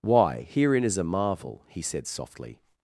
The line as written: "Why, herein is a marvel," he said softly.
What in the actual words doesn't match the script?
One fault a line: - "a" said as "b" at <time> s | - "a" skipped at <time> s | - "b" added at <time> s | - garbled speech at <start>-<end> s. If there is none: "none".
none